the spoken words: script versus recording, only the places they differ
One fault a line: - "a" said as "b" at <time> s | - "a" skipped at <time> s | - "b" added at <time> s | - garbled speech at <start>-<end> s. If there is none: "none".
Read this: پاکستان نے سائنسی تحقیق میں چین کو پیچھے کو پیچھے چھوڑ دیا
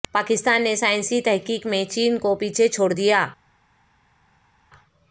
- "کو پیچھے" skipped at 2.7 s